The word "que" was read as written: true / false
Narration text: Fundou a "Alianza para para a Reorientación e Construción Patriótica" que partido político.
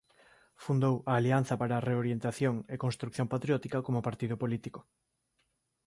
false